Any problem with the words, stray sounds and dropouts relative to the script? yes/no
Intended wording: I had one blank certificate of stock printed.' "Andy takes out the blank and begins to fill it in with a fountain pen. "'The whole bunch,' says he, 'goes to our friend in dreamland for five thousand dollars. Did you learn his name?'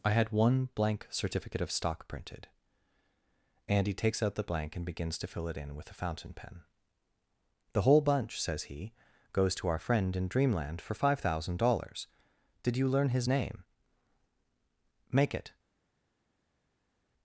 yes